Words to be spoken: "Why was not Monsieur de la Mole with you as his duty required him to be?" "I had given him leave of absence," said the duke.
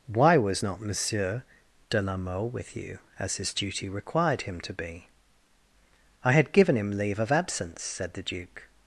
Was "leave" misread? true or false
false